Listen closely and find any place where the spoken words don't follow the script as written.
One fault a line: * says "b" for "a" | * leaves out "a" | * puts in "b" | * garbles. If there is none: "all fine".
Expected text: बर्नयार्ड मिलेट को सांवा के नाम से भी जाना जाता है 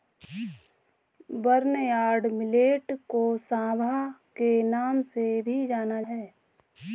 * leaves out "जाता"